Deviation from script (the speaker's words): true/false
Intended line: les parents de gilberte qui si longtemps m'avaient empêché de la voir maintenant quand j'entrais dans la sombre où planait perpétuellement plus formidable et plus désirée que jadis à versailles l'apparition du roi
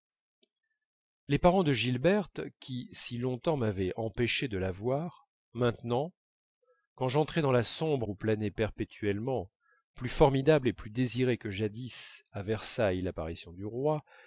false